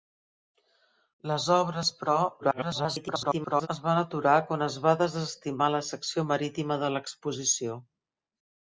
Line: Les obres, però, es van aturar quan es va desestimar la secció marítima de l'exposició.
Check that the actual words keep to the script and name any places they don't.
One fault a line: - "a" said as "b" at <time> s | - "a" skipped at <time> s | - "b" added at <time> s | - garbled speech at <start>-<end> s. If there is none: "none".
- garbled speech at 2.4-3.7 s